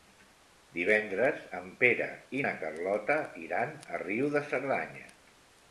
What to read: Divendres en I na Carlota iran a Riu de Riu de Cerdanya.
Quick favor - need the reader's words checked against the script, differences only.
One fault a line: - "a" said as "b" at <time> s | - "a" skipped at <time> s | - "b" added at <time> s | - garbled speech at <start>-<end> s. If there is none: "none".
- "Pere" added at 1.8 s
- "Riu de" skipped at 4.5 s